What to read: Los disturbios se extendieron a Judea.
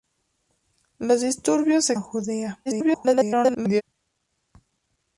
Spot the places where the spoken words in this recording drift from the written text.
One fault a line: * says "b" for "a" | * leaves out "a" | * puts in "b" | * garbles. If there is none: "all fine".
* leaves out "extendieron"
* garbles